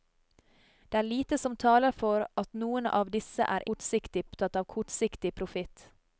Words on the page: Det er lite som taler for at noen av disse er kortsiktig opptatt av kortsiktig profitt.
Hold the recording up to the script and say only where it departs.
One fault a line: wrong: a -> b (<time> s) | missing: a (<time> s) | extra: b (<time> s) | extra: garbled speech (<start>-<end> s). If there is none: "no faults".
no faults